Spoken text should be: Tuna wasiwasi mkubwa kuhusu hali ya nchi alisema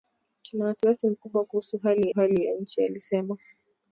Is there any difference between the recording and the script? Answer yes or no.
yes